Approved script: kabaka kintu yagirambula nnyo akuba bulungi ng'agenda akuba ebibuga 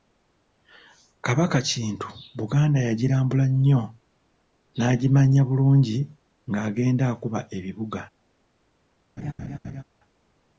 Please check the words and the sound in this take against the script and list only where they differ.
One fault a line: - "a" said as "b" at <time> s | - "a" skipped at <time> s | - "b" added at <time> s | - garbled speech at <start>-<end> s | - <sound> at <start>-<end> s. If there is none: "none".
- "buganda" added at 2.4 s
- "akuba" said as "n'agimanya" at 4.8 s
- laugh at 9.2-9.8 s